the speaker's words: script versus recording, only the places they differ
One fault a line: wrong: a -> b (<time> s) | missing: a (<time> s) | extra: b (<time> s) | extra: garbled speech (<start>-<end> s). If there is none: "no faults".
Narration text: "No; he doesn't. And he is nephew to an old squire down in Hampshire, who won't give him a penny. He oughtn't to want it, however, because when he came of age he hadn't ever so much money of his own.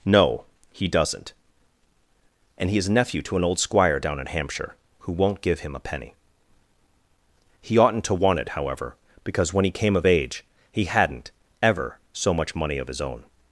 no faults